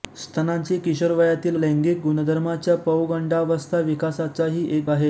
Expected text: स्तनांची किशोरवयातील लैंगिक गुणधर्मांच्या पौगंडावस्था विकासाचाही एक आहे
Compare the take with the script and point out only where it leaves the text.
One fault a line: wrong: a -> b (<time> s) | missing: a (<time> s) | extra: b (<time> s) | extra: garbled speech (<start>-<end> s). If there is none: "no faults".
no faults